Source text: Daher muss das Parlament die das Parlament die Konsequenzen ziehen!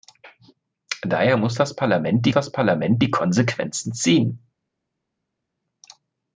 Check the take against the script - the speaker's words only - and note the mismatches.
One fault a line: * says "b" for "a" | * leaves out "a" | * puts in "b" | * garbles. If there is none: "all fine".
all fine